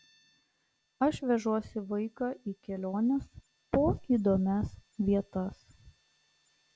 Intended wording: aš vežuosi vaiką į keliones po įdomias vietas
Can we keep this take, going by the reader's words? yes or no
yes